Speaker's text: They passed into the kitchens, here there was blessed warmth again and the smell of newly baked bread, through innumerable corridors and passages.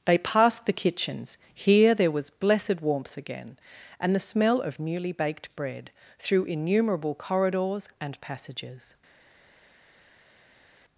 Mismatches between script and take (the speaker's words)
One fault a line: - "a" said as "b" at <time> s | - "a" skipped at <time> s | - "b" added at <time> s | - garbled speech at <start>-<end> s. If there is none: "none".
- "into" skipped at 0.6 s